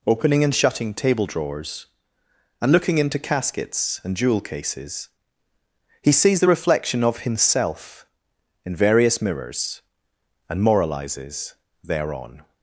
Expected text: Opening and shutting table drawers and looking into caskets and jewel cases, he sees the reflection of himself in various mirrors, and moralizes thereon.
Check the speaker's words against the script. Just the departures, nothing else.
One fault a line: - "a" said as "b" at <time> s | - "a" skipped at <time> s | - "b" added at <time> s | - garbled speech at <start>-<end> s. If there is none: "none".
none